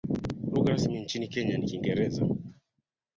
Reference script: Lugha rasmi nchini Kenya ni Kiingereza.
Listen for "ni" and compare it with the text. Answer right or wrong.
right